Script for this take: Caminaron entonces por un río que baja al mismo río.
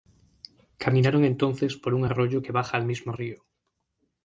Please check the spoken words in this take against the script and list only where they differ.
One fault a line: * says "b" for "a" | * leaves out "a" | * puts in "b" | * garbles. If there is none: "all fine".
* says "arroyo" for "río"